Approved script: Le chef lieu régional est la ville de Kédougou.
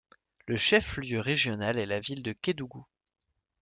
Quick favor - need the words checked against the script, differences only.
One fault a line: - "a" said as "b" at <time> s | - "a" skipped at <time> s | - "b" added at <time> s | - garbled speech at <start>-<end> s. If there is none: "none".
none